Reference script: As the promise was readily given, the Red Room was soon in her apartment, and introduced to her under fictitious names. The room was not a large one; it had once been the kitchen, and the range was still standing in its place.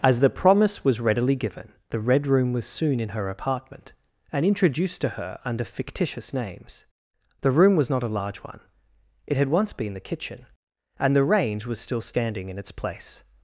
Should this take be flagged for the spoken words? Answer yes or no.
no